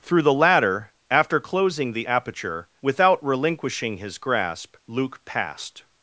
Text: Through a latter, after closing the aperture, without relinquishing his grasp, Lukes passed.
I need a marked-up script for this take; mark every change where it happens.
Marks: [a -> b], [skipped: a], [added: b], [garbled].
Through [a -> the] latter, after closing the aperture, without relinquishing his grasp, [Lukes -> Luke] passed.